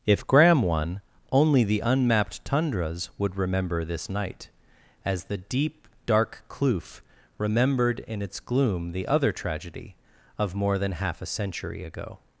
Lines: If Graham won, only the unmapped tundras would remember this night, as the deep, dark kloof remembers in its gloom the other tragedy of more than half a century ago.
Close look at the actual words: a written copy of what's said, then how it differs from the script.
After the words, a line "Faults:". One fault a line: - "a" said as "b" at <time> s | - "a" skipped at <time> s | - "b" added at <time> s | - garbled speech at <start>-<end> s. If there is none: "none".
If Graham won, only the unmapped tundras would remember this night, as the deep, dark kloof remembered in its gloom the other tragedy of more than half a century ago.
Faults:
- "remembers" said as "remembered" at 7.4 s